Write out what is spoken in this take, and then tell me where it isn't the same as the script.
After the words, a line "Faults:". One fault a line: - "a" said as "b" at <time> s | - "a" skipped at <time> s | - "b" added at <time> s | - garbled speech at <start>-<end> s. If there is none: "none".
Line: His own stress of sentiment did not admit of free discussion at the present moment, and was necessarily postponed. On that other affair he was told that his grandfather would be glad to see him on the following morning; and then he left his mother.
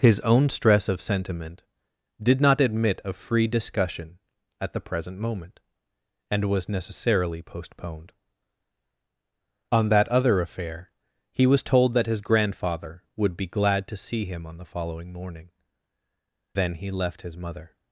His own stress of sentiment did not admit of free discussion at the present moment, and was necessarily postponed. On that other affair he was told that his grandfather would be glad to see him on the following morning; then he left his mother.
Faults:
- "and" skipped at 15.5 s